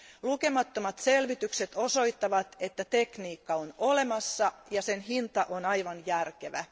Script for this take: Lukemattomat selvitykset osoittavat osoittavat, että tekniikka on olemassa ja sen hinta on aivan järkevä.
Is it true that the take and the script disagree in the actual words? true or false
true